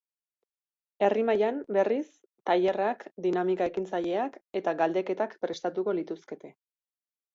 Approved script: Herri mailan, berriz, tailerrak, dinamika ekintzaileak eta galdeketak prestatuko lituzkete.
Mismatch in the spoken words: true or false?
false